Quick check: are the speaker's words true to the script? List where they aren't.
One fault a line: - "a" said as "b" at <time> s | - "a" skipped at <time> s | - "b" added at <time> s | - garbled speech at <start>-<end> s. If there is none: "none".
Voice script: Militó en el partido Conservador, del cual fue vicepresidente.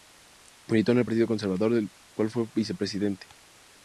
none